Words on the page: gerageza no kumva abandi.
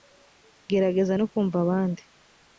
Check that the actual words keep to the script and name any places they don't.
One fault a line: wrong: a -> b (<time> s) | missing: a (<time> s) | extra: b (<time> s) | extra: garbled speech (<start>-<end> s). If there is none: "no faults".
no faults